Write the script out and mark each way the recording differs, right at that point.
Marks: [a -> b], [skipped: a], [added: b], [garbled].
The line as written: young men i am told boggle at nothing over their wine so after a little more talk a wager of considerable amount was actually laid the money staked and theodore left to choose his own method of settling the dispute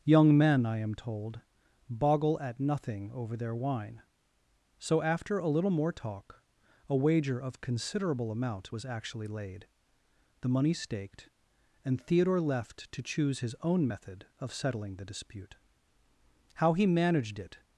young men i am told boggle at nothing over their wine so after a little more talk a wager of considerable amount was actually laid the money staked and theodore left to choose his own method of settling the dispute [added: how he managed it]